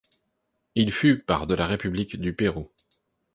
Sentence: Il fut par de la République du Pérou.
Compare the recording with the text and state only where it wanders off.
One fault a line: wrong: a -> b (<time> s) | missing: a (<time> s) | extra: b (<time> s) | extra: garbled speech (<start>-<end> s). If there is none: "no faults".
no faults